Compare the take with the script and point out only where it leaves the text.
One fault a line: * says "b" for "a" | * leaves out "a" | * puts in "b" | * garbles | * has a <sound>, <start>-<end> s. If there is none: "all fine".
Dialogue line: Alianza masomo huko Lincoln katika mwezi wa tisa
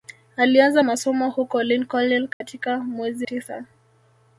* has a dropout, 2.3-2.4 s
* leaves out "wa"